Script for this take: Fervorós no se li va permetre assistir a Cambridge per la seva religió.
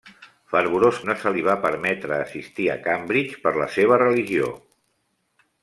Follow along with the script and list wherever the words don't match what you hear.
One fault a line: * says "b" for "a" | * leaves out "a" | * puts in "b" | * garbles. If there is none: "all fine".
all fine